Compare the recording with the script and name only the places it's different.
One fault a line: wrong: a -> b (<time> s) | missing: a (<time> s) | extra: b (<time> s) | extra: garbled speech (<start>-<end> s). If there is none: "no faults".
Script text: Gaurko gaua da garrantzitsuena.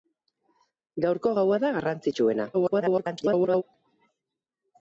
extra: garbled speech (2.5-3.6 s)